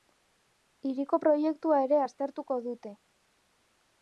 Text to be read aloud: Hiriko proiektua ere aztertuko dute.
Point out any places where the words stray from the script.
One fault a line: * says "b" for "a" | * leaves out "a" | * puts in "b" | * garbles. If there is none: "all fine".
all fine